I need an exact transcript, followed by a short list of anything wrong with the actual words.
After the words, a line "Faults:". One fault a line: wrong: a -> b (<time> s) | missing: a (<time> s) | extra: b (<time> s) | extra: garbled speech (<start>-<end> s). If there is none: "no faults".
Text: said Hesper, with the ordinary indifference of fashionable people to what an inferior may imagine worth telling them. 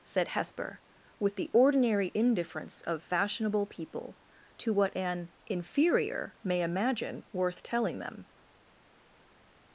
said Hesper, with the ordinary indifference of fashionable people to what an inferior may imagine worth telling them.
Faults:
no faults